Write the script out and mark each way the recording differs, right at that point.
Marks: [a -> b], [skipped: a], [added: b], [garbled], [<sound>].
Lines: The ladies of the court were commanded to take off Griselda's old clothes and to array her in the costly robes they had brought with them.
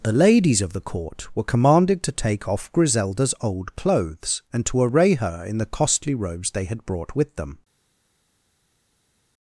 The ladies of the court were commanded to take off Griselda's old clothes and to array her in the costly robes they had brought with them.